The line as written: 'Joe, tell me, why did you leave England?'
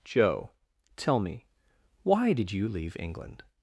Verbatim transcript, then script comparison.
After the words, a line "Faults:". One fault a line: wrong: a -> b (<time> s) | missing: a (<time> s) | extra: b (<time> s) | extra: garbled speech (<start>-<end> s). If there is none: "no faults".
'Joe, tell me, why did you leave England?'
Faults:
no faults